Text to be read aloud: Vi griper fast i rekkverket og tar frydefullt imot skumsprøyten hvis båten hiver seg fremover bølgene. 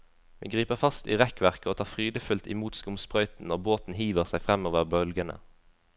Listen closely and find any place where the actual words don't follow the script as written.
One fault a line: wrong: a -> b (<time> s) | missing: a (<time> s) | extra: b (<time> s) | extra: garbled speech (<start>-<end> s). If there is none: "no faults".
wrong: hvis -> når (3.5 s)